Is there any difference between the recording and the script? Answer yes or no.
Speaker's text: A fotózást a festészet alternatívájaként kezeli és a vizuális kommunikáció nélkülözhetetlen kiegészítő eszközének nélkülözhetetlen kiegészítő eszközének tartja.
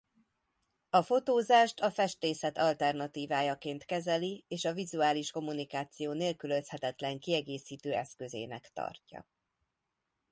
yes